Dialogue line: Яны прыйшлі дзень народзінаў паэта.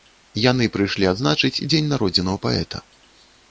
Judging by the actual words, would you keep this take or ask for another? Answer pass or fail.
fail